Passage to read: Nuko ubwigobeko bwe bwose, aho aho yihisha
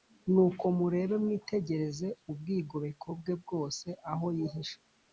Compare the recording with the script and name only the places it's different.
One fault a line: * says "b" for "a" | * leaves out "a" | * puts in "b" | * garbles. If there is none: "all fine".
* puts in "murebe mwitegereze"
* leaves out "aho"